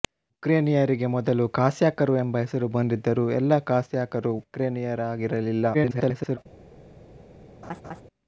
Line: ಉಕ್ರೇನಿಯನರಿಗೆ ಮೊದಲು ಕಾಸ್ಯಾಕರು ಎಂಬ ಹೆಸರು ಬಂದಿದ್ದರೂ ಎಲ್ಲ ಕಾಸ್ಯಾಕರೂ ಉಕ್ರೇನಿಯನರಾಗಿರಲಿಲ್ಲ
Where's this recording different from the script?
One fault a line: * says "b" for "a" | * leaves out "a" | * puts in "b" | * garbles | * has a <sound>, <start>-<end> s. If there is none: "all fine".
* garbles
* has a laugh, 7.6-8.0 s